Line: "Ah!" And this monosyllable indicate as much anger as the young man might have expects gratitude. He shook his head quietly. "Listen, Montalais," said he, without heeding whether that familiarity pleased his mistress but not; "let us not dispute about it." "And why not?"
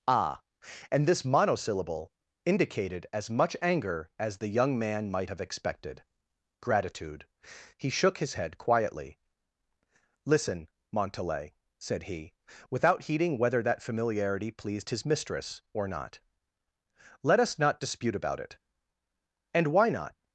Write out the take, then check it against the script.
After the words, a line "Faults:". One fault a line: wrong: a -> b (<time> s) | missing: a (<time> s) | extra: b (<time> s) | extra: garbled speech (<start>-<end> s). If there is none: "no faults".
"Ah!" And this monosyllable indicated as much anger as the young man might have expected gratitude. He shook his head quietly. "Listen, Montalais," said he, without heeding whether that familiarity pleased his mistress or not; "let us not dispute about it." "And why not?"
Faults:
wrong: indicate -> indicated (2.4 s)
wrong: expects -> expected (5.4 s)
wrong: but -> or (15.7 s)